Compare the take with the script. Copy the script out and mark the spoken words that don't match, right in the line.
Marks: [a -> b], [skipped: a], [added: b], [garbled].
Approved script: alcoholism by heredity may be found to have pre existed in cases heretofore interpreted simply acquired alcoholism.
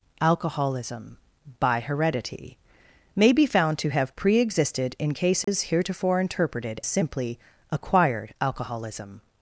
alcoholism by heredity may be found to have pre existed in cases heretofore interpreted simply acquired alcoholism.